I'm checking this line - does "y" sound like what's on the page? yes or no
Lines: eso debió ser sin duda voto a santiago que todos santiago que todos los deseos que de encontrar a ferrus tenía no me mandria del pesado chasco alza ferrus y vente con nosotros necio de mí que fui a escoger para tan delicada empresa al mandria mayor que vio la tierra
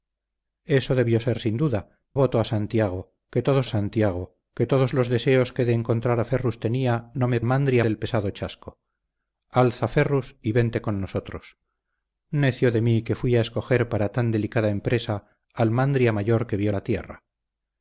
yes